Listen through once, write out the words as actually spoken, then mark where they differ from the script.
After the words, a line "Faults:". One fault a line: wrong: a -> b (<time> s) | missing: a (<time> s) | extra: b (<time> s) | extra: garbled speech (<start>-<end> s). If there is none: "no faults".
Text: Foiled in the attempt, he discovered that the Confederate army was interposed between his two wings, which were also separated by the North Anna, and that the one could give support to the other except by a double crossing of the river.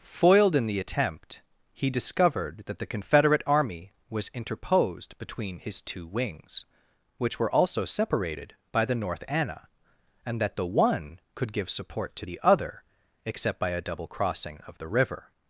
Foiled in the attempt, he discovered that the Confederate army was interposed between his two wings, which were also separated by the North Anna, and that the one could give support to the other except by a double crossing of the river.
Faults:
no faults